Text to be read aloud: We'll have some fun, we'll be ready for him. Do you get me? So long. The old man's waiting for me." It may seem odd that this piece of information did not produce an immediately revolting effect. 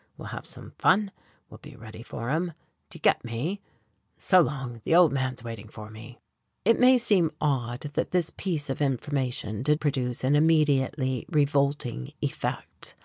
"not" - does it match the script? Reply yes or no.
no